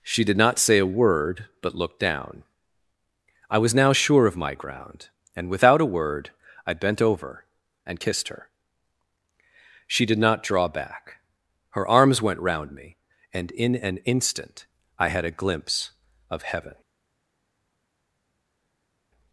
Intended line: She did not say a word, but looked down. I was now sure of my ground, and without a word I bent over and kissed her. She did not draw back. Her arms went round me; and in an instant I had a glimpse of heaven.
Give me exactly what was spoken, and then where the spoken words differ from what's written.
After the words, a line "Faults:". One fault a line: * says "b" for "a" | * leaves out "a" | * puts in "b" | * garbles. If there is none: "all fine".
She did not say a word, but looked down. I was now sure of my ground, and without a word I bent over and kissed her. She did not draw back. Her arms went round me; and in an instant I had a glimpse of heaven.
Faults:
all fine